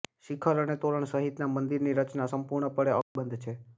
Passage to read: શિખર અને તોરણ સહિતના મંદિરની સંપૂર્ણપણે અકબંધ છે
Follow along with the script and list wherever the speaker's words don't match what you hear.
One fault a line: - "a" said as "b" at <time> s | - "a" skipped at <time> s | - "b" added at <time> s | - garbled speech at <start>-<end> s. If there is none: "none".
- "રચના" added at 2.0 s